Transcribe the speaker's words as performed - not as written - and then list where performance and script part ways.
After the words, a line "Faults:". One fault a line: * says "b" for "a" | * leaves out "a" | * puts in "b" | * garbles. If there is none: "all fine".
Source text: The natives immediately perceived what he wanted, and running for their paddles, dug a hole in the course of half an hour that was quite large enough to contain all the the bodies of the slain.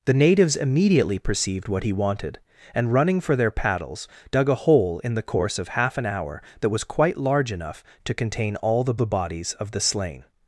The natives immediately perceived what he wanted, and running for their paddles, dug a hole in the course of half an hour that was quite large enough to contain all the the bodies of the slain.
Faults:
all fine